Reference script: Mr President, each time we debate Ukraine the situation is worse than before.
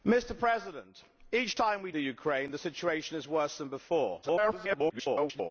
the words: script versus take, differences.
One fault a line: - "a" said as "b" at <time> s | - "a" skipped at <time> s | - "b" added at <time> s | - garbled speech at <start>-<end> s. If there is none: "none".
- "debate" skipped at 1.9 s
- garbled speech at 4.2-5.5 s